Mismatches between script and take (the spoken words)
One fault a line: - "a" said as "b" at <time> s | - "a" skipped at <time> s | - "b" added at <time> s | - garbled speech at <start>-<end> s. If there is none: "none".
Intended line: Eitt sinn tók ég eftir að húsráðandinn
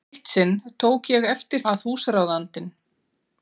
none